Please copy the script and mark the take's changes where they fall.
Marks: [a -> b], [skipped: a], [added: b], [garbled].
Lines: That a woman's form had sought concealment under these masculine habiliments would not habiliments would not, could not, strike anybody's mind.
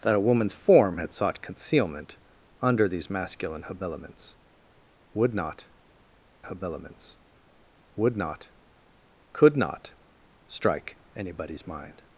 That a woman's form had sought concealment under these masculine habiliments would not habiliments would not, could not, strike anybody's mind.